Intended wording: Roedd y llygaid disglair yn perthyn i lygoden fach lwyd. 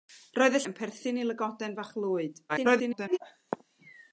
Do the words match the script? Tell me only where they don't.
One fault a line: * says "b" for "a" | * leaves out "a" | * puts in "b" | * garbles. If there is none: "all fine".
* leaves out "llygaid disglair"
* garbles